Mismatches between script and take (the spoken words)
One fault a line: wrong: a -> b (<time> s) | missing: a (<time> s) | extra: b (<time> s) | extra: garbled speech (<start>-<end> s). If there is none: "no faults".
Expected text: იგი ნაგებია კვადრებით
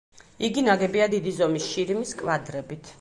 extra: დიდი ზომის შირიმის (1.2 s)